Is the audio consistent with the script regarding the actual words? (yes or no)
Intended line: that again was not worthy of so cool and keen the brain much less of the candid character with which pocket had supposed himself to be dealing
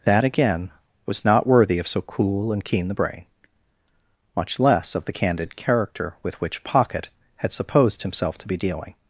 yes